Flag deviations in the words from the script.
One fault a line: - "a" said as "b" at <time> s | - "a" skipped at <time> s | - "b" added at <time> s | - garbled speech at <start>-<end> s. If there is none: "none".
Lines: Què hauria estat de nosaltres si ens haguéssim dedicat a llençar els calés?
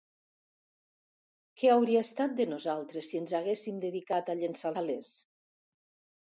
- "els" skipped at 4.8 s